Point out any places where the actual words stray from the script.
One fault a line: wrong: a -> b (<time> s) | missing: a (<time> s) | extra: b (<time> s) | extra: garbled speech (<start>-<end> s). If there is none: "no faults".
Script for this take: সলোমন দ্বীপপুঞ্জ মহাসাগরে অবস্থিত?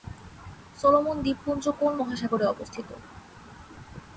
extra: কোন (1.8 s)